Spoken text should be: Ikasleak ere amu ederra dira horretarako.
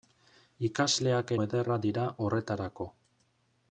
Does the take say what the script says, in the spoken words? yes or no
no